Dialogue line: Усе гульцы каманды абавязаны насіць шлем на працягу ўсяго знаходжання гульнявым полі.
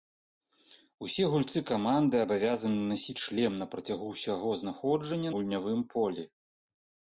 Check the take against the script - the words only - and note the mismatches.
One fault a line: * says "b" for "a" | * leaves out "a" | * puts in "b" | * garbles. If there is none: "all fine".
all fine